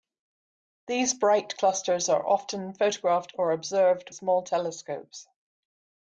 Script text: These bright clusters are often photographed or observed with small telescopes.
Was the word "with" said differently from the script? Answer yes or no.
yes